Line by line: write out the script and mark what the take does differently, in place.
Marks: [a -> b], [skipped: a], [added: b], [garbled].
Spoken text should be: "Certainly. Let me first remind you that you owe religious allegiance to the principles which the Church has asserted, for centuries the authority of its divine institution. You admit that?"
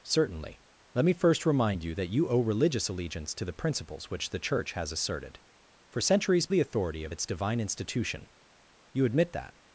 "Certainly. Let me first remind you that you owe religious allegiance to the principles which the Church has asserted, for centuries the authority of its divine institution. You admit that?"